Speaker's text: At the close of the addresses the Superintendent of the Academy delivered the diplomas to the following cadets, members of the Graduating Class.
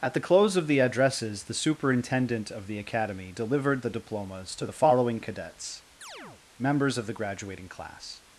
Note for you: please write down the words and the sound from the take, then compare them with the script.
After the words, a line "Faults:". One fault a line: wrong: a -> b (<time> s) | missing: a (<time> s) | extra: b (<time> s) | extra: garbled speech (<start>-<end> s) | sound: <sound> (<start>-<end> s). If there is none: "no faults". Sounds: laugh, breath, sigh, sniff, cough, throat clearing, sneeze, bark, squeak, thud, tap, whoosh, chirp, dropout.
At the close of the addresses the Superintendent of the Academy delivered the diplomas to the following cadets, members of the Graduating Class.
Faults:
sound: chirp (6.0-6.4 s)